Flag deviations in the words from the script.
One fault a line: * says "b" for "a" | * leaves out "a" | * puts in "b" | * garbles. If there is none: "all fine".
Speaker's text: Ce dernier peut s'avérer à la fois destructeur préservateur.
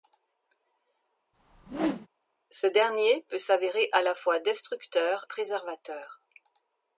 all fine